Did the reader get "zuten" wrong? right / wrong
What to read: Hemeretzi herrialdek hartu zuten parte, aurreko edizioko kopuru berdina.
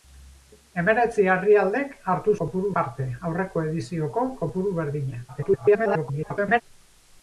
wrong